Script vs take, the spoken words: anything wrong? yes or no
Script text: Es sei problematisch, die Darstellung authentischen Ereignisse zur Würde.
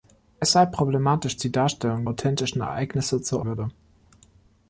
no